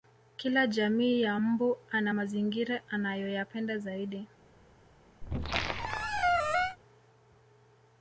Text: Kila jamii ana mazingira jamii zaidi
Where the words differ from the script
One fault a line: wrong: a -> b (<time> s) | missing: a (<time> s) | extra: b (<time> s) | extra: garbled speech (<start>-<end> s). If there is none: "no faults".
extra: ya mbu (1.2 s)
wrong: jamii -> anayoyapenda (2.9 s)